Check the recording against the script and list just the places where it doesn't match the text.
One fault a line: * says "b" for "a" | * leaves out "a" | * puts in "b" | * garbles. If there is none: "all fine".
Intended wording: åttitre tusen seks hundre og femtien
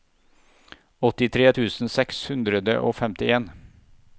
all fine